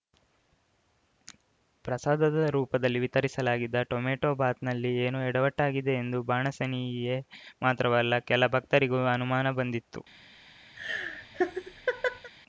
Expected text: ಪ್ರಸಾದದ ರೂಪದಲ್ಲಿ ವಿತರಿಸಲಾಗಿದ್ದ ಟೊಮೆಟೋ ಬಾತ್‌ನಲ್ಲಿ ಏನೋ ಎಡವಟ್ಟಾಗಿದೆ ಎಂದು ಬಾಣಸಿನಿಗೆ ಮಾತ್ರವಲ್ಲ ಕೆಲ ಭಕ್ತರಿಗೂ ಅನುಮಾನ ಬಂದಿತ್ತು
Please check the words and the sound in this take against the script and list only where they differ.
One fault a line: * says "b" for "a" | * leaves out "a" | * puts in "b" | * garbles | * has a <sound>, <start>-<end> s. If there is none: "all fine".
* has a laugh, 10.7-12.3 s